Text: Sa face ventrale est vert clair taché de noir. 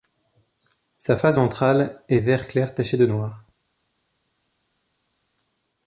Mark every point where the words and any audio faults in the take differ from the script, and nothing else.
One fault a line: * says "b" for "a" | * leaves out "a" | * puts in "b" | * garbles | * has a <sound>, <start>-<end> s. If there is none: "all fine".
all fine